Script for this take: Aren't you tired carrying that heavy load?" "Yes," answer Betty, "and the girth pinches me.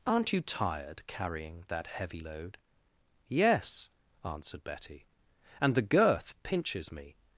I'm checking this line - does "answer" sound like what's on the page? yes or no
no